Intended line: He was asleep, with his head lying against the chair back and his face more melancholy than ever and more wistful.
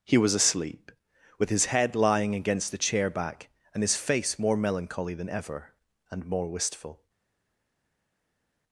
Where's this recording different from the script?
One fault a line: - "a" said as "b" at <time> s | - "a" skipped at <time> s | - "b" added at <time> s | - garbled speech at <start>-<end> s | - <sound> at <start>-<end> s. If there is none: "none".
none